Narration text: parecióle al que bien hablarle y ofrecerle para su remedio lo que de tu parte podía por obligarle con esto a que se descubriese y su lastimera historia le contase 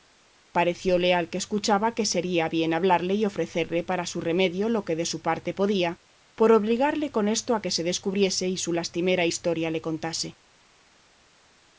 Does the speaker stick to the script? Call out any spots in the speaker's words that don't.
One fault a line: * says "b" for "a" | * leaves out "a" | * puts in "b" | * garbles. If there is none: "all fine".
* puts in "escuchaba que sería"
* says "su" for "tu"